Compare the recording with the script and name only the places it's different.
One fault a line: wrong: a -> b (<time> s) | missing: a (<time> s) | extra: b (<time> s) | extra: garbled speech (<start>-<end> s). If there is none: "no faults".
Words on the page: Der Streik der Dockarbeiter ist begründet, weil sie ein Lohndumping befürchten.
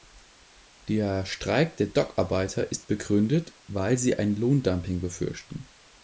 no faults